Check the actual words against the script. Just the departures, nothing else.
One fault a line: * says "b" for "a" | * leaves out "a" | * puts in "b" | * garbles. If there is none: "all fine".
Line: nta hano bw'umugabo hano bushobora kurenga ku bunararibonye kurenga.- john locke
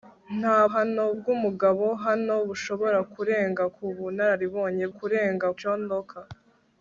all fine